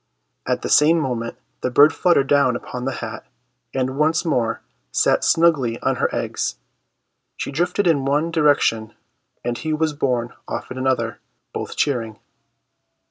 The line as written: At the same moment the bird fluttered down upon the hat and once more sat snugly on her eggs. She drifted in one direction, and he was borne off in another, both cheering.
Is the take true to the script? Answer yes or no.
yes